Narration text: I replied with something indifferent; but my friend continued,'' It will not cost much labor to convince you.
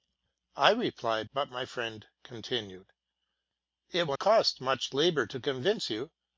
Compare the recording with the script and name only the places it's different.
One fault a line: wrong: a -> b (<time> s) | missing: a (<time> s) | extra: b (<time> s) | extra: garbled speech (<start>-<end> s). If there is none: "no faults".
missing: with something indifferent (1.3 s)
missing: not (4.2 s)